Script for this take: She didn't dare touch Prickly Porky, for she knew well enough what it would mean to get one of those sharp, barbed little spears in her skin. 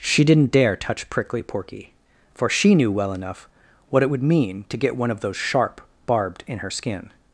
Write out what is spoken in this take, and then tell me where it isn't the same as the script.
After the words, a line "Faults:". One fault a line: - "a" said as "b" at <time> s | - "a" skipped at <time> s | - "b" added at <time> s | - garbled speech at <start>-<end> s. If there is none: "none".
She didn't dare touch Prickly Porky, for she knew well enough what it would mean to get one of those sharp, barbed in her skin.
Faults:
- "little spears" skipped at 6.4 s